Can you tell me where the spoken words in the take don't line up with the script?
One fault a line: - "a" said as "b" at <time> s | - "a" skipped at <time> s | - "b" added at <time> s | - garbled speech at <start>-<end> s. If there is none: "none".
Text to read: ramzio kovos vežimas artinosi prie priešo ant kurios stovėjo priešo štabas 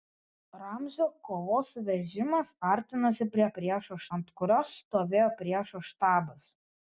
none